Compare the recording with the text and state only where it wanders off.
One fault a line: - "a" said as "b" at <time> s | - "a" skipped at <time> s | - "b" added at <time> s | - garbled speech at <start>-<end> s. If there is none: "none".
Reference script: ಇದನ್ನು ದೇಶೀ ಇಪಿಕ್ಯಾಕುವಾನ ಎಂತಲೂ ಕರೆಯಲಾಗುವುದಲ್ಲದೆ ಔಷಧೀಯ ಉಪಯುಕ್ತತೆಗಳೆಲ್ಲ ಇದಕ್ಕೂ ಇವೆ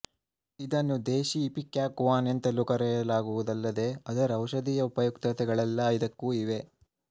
- "ಅದರ" added at 4.1 s